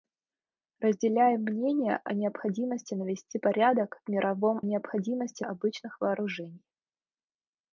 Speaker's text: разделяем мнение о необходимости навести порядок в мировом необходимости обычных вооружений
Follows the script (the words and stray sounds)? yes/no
yes